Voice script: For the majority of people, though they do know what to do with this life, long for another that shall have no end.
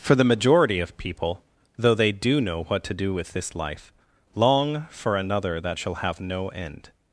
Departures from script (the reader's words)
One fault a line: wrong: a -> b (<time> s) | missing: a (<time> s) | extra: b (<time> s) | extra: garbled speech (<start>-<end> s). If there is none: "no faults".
no faults